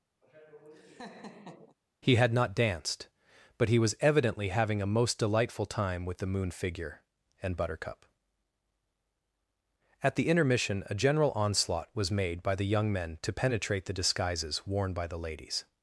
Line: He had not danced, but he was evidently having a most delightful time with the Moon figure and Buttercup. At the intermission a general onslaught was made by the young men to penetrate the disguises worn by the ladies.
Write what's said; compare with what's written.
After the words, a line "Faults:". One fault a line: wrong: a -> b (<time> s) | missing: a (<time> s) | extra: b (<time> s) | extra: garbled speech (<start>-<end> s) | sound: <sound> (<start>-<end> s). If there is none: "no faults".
He had not danced, but he was evidently having a most delightful time with the Moon figure and Buttercup. At the intermission a general onslaught was made by the young men to penetrate the disguises worn by the ladies.
Faults:
sound: laugh (0.2-1.8 s)